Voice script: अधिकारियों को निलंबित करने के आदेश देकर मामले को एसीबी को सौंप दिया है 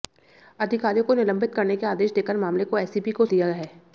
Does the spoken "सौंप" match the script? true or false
false